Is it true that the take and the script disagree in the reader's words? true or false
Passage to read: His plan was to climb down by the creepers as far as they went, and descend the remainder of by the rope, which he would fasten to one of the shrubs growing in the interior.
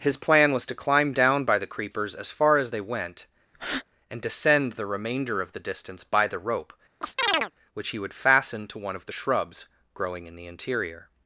true